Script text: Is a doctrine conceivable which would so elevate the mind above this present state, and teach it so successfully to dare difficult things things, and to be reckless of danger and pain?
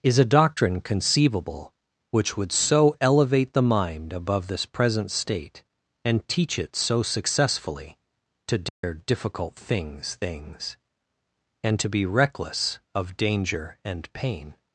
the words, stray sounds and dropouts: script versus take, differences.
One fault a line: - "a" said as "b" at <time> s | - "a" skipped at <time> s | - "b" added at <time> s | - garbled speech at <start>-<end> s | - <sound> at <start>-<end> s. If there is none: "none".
- dropout at 8.7-8.8 s